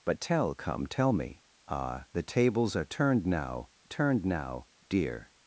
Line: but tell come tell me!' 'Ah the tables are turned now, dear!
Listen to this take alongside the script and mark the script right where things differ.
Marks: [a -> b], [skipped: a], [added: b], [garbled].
but tell come tell me!' 'Ah the tables are turned now, [added: turned now] dear!